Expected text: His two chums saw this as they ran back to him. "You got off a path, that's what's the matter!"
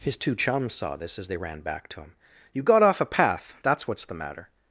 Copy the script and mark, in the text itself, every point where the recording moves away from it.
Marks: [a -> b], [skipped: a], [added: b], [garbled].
His two chums saw this as they ran back to him. "You got off a path, that's what's the matter!"